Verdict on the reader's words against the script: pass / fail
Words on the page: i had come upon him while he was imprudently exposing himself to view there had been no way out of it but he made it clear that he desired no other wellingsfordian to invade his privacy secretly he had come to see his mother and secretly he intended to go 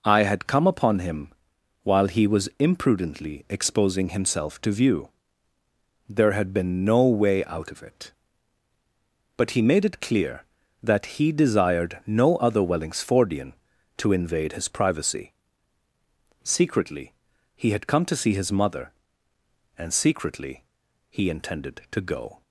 pass